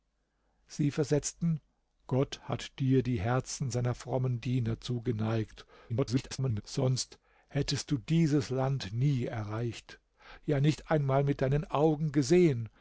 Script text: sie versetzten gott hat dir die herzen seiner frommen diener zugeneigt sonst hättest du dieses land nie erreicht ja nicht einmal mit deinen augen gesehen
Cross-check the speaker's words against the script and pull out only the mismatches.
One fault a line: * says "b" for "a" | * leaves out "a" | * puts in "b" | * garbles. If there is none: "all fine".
* garbles